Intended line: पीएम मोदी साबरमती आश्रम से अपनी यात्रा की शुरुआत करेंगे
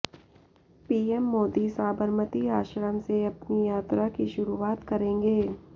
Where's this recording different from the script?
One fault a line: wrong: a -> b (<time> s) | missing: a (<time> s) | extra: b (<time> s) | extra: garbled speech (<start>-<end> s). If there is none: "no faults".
no faults